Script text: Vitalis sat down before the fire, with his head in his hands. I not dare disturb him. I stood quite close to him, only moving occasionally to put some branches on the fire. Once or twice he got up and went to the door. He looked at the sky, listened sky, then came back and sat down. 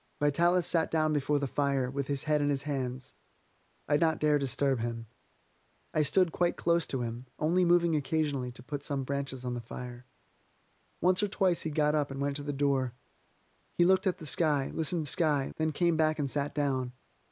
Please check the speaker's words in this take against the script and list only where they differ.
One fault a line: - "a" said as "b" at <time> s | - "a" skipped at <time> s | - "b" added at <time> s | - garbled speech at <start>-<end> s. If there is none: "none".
none